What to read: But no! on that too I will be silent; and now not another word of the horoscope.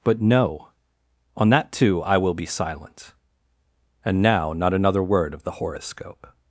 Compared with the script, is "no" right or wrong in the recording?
right